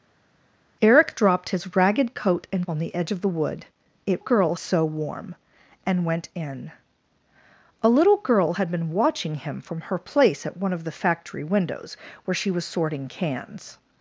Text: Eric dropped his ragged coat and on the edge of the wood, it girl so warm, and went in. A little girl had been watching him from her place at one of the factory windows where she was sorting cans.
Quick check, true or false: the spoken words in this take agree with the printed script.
true